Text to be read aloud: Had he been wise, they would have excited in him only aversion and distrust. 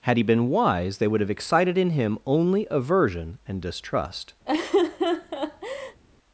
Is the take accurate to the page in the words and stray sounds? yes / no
no